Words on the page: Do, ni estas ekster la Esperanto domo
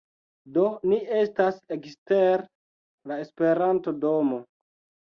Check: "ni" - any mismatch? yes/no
no